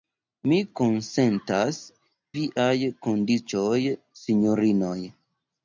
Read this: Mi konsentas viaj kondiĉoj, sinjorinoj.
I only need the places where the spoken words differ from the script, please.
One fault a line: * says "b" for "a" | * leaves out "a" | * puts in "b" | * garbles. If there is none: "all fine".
all fine